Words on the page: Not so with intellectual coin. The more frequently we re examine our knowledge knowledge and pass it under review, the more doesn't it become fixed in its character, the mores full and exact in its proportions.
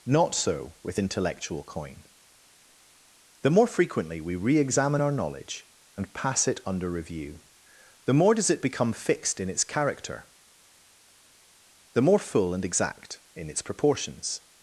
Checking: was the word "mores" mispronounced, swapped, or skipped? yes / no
yes